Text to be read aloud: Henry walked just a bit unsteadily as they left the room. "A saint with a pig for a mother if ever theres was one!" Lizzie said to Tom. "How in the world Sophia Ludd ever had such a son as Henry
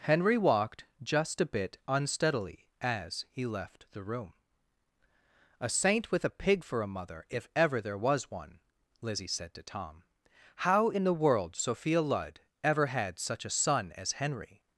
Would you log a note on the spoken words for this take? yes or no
yes